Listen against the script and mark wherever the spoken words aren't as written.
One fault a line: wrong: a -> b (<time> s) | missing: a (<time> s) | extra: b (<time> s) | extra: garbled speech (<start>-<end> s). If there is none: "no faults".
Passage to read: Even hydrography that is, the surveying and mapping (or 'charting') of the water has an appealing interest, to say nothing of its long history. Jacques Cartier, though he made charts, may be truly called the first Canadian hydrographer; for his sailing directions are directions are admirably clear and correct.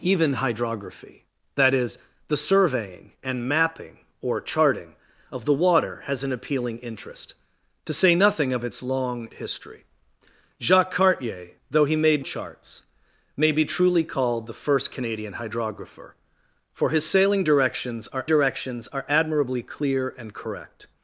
no faults